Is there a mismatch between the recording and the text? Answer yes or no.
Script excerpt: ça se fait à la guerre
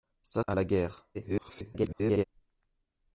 yes